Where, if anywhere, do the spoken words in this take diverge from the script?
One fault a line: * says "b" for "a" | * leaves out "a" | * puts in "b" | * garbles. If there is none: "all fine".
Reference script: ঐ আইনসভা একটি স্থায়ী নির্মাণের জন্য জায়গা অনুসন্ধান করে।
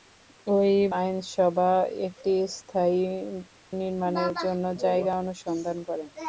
all fine